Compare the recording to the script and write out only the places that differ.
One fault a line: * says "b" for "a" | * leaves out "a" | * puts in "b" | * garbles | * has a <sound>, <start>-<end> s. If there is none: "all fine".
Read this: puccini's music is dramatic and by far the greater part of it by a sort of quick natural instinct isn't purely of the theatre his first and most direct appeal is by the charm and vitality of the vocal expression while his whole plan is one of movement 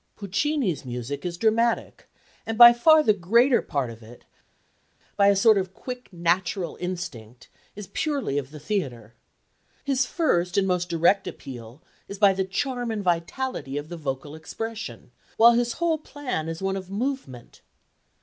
* says "is" for "isn't"